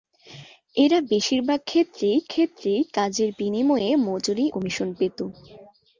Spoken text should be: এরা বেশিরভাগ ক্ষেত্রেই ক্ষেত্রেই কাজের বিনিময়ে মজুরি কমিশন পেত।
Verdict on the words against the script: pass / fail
pass